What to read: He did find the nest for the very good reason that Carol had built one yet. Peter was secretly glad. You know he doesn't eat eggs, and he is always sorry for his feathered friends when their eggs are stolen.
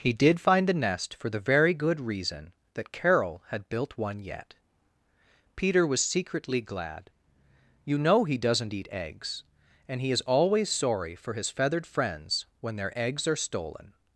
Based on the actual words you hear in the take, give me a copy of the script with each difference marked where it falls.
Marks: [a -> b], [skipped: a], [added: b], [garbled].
He did find the nest for the very good reason that Carol had built one yet. Peter was secretly glad. You know he doesn't eat eggs, and he is always sorry for his feathered friends when their eggs are stolen.